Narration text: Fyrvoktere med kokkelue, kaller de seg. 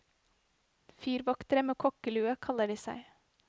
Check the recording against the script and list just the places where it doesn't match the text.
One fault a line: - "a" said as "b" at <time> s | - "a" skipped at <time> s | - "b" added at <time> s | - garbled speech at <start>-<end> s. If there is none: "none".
none